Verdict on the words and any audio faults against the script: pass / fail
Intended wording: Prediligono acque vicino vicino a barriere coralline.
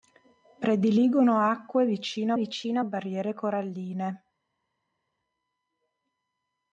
pass